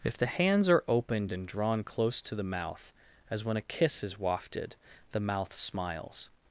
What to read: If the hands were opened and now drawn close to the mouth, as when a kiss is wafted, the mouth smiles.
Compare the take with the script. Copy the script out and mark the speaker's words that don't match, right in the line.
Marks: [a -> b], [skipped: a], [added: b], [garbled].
If the hands [were -> are] opened and [skipped: now] drawn close to the mouth, as when a kiss is wafted, the mouth smiles.